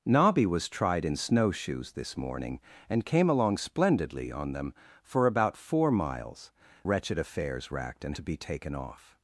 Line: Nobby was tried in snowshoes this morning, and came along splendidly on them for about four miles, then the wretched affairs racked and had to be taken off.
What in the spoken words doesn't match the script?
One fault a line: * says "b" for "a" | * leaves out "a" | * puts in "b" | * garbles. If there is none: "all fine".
* leaves out "then the"
* leaves out "had"